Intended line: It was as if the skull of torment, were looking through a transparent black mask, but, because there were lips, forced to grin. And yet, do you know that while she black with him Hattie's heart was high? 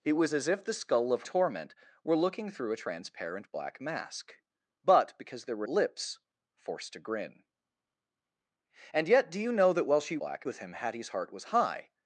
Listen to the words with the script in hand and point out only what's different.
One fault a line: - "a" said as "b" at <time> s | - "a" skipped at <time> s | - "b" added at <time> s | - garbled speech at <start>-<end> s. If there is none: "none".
none